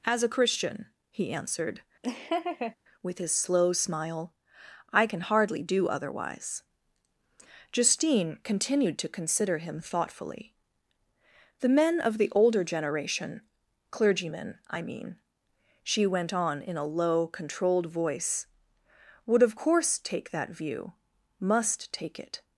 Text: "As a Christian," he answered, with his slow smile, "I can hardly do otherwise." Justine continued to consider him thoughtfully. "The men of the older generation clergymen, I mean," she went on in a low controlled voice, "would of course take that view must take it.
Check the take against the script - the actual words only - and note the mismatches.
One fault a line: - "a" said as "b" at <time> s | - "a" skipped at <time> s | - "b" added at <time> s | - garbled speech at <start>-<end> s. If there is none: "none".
none